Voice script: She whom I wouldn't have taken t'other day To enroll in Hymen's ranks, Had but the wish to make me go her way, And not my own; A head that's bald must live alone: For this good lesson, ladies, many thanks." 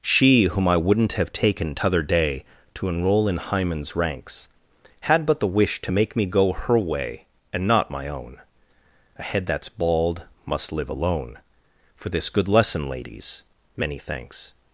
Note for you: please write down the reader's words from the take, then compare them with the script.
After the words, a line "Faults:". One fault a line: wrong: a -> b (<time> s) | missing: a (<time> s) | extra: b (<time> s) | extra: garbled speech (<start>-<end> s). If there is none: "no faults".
She whom I wouldn't have taken t'other day To enroll in Hymen's ranks, Had but the wish to make me go her way, And not my own; A head that's bald must live alone: For this good lesson, ladies, many thanks."
Faults:
no faults